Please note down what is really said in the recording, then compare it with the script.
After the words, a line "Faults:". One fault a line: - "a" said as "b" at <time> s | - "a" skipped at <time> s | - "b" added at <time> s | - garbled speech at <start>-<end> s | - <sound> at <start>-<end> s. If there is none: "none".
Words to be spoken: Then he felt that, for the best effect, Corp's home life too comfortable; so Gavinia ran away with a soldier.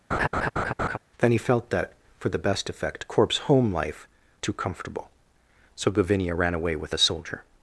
Then he felt that, for the best effect, Corp's home life too comfortable; so Gavinia ran away with a soldier.
Faults:
- laugh at 0.1-1.0 s